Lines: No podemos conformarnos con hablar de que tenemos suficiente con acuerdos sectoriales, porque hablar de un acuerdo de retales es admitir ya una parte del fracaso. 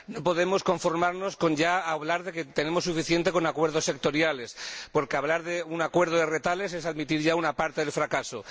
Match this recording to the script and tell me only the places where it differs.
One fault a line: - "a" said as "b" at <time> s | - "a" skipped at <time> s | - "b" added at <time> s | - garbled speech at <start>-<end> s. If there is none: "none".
none